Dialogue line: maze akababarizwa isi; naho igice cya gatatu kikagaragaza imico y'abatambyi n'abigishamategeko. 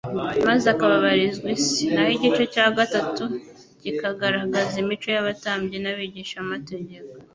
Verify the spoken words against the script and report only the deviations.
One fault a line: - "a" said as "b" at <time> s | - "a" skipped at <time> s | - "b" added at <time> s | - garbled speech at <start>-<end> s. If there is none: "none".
none